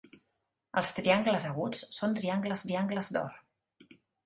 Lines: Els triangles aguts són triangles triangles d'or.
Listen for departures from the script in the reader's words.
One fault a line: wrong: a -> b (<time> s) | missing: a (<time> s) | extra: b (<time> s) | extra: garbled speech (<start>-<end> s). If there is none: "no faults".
no faults